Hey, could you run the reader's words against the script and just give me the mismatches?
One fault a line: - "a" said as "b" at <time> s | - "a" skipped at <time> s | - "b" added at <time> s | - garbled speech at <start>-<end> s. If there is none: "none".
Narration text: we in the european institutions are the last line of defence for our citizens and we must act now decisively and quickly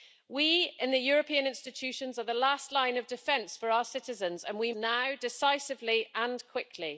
- "must act" skipped at 4.7 s